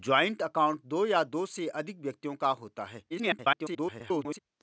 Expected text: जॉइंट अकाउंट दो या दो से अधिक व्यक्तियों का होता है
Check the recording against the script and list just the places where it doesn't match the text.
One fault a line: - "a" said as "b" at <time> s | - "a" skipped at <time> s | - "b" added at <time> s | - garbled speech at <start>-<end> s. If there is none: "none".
- garbled speech at 3.1-4.4 s